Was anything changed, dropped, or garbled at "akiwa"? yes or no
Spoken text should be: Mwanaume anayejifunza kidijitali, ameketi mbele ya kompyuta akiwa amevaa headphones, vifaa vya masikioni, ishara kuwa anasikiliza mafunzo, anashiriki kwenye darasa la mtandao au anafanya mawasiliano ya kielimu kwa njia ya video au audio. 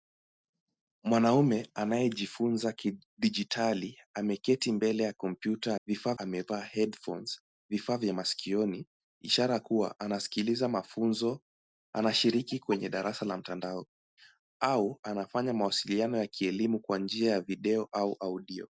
yes